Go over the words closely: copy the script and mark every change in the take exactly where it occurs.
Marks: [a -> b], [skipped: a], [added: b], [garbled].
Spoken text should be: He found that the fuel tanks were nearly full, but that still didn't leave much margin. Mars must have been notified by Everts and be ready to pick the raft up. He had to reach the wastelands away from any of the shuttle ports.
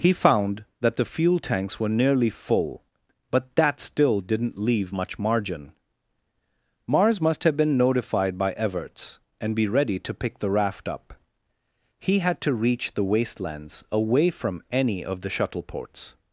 He found that the fuel tanks were nearly full, but that still didn't leave much margin. Mars must have been notified by Everts and be ready to pick the raft up. He had to reach the wastelands away from any of the shuttle ports.